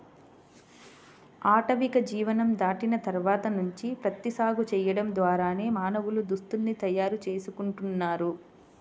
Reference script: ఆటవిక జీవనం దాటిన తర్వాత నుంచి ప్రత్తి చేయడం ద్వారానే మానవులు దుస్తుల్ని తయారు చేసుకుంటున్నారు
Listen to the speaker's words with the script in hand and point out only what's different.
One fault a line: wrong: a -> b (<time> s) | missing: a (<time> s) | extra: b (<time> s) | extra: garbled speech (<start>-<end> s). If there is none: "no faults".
extra: సాగు (4.3 s)